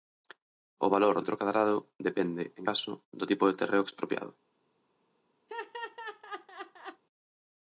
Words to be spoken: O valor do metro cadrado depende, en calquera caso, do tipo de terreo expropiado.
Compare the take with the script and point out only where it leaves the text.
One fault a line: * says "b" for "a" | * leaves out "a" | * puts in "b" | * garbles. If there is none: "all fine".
* leaves out "do"
* leaves out "calquera"